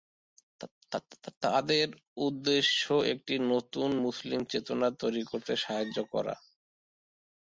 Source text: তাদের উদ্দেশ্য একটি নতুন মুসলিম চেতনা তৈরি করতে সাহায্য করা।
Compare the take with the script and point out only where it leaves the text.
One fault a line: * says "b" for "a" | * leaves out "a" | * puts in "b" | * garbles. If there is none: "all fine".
all fine